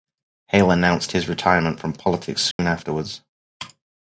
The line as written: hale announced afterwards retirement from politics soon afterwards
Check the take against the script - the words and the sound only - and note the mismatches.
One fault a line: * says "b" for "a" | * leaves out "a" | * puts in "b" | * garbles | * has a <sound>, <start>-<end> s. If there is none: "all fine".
* says "his" for "afterwards"
* has a dropout, 2.5-2.6 s